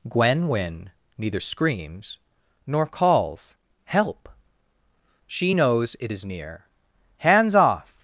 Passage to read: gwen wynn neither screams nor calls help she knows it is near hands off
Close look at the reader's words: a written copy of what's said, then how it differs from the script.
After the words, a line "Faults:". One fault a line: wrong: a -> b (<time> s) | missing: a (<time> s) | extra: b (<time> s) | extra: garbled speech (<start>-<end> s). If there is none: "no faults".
gwen wynn neither screams nor calls help she knows it is near hands off
Faults:
no faults